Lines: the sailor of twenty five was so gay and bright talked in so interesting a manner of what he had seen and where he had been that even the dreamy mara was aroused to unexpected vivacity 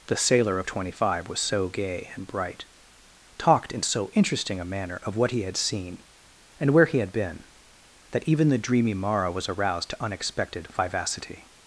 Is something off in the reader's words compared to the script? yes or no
no